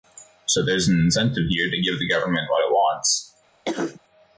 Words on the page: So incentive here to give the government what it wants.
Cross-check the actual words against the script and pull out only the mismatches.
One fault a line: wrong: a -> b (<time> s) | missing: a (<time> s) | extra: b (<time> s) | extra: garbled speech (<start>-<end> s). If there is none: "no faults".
extra: there's an (0.7 s)